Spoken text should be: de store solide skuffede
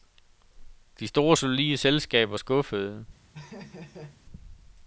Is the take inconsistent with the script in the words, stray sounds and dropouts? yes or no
yes